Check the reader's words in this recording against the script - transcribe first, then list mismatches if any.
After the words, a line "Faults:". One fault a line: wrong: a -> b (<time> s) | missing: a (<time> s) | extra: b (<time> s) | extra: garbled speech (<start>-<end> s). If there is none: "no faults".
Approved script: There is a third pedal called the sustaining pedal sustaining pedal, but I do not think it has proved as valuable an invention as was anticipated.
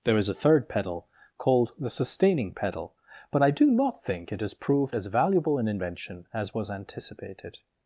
There is a third pedal called the sustaining pedal, but I do not think it has proved as valuable an invention as was anticipated.
Faults:
missing: sustaining pedal (2.9 s)